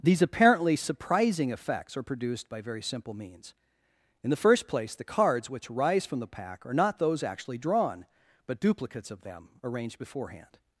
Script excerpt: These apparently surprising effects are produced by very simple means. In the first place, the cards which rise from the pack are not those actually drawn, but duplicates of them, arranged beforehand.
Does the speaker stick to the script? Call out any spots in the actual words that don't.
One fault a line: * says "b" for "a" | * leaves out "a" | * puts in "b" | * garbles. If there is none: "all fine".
all fine